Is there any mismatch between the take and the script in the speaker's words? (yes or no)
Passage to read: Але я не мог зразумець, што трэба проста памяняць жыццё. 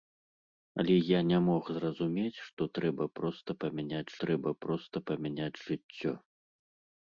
yes